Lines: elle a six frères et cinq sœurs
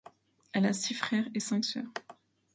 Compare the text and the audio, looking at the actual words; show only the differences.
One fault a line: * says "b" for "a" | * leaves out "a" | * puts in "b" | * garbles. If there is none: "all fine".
all fine